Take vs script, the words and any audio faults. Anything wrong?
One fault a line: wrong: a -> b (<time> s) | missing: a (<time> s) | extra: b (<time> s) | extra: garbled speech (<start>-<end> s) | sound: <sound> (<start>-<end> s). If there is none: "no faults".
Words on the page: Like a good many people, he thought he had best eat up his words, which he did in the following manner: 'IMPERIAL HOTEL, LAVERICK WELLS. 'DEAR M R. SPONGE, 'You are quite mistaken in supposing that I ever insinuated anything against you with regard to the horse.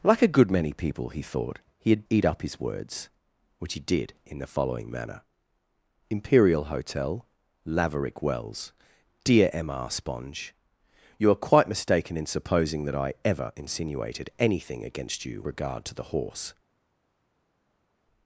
missing: best (2.1 s)
missing: with (15.4 s)